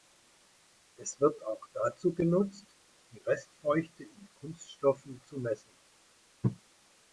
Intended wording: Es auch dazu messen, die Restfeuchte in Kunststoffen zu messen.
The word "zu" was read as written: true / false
true